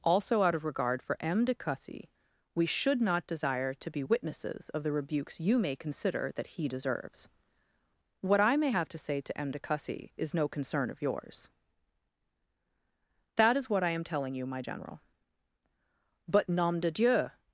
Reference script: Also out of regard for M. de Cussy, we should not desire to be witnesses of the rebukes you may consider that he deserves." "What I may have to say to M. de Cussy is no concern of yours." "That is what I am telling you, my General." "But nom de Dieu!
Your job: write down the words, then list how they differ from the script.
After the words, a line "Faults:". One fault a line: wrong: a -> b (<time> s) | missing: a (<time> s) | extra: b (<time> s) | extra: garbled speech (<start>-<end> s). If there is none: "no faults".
Also out of regard for M. de Cussy, we should not desire to be witnesses of the rebukes you may consider that he deserves." "What I may have to say to M. de Cussy is no concern of yours." "That is what I am telling you, my General." "But nom de Dieu!
Faults:
no faults